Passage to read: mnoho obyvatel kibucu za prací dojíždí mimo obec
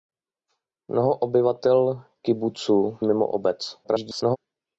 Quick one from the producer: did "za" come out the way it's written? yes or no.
no